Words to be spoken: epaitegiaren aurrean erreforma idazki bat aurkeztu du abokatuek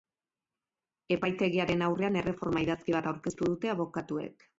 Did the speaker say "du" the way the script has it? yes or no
no